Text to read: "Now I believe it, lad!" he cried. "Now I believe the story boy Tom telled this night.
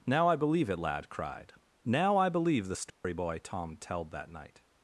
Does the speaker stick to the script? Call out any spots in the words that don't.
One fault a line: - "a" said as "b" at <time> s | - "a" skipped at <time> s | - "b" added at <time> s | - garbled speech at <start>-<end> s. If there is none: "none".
- "he" skipped at 1.1 s
- "this" said as "that" at 4.1 s